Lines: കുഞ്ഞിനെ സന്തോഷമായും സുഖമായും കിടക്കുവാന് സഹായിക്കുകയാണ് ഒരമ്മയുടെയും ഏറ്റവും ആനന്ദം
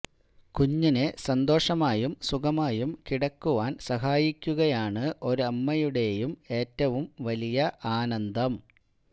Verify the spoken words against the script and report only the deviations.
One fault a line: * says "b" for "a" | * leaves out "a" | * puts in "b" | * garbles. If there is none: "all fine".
* puts in "വലിയ"